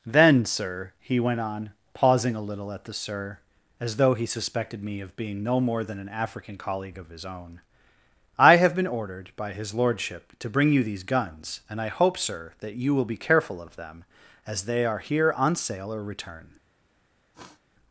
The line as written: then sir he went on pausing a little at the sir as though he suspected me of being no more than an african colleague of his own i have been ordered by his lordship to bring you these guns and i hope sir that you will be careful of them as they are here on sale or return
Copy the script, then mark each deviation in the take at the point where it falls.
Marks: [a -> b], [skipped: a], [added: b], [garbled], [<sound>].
then sir he went on pausing a little at the sir as though he suspected me of being no more than an african colleague of his own i have been ordered by his lordship to bring you these guns and i hope sir that you will be careful of them as they are here on sale or return [sniff]